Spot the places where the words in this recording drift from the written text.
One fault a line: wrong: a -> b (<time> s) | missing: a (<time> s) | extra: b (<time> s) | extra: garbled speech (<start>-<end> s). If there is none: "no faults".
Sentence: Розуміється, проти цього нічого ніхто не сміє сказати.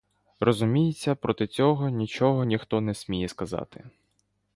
no faults